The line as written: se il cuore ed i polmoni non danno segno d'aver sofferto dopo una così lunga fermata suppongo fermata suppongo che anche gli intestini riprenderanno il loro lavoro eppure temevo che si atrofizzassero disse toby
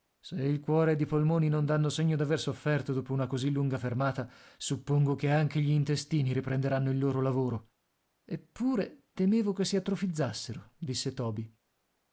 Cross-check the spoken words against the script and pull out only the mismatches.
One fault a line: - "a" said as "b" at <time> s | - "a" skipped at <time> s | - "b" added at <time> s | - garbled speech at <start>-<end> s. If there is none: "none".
- "fermata suppongo" skipped at 5.1 s